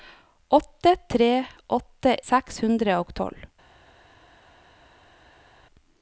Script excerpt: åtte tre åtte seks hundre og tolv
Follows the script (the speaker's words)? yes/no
yes